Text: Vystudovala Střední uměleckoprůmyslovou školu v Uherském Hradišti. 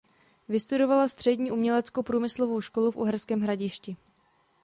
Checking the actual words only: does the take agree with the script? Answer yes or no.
yes